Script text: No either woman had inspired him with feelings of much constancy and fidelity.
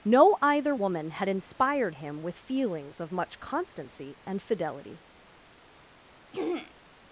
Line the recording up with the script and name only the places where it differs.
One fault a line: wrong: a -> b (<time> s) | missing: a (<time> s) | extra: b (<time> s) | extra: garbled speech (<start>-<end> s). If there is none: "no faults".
no faults